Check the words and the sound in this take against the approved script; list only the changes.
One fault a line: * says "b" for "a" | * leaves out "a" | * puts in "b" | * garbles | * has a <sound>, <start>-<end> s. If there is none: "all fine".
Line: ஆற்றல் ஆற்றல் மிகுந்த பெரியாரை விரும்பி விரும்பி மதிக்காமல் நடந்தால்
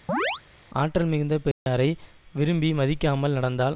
* has a chirp, 0.1-0.4 s
* leaves out "ஆற்றல்"
* has a dropout, 1.5-1.7 s
* leaves out "விரும்பி"